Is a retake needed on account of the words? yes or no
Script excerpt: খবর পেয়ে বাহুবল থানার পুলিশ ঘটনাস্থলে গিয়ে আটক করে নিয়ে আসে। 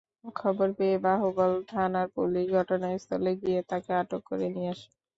yes